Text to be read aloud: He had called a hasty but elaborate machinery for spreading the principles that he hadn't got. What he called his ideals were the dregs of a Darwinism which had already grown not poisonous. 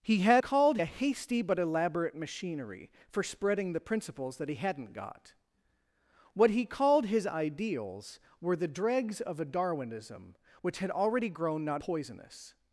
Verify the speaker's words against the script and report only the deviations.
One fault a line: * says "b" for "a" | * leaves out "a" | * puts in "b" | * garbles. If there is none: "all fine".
all fine